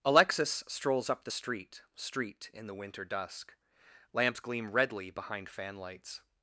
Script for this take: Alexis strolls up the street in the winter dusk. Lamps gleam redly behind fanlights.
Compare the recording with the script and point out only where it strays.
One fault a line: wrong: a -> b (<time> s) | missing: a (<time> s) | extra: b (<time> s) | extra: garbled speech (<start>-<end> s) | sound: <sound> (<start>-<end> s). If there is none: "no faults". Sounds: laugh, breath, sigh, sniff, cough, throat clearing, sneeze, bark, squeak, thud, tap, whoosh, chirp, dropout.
extra: street (1.9 s)